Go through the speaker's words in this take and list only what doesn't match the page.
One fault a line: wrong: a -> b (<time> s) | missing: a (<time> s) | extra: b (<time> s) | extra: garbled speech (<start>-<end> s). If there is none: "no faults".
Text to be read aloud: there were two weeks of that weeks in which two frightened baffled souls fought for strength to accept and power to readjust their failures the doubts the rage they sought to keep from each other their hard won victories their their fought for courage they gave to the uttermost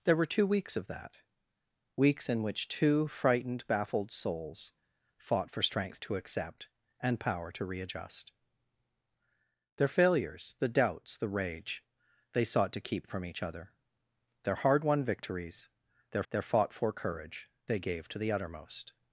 no faults